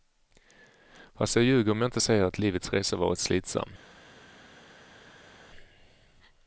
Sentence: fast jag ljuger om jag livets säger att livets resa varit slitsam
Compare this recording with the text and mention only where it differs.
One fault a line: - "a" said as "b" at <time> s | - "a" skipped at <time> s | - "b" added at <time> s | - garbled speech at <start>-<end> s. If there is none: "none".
- "livets" said as "inte" at 1.9 s